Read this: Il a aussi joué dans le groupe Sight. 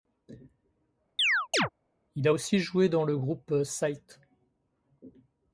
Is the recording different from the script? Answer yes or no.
no